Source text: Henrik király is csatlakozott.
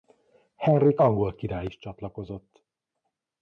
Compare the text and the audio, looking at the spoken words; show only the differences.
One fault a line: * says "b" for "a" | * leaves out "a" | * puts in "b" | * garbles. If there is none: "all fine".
* puts in "angol"